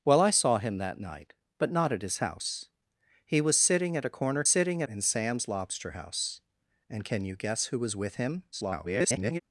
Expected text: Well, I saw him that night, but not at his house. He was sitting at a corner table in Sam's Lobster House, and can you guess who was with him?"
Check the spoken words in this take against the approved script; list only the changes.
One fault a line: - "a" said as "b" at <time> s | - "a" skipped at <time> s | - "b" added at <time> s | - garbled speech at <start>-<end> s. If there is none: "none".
- "table" said as "sitting" at 4.4 s
- garbled speech at 8.5-9.4 s